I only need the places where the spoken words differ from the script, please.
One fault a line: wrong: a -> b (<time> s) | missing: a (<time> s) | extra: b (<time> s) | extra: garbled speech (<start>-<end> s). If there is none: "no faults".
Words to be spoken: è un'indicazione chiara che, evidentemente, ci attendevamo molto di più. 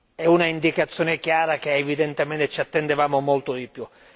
no faults